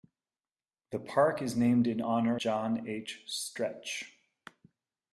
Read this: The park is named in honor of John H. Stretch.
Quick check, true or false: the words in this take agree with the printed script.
false